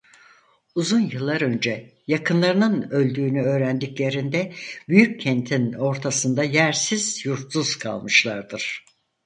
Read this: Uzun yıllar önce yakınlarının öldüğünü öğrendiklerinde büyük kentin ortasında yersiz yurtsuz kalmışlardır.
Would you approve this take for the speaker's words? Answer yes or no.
yes